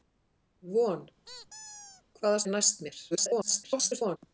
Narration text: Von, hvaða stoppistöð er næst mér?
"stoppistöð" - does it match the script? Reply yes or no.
no